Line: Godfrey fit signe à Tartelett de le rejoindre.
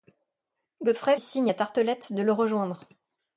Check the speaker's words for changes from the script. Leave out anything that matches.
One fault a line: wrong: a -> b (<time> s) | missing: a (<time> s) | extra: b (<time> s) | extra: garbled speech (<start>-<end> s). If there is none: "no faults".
missing: fit (1.1 s)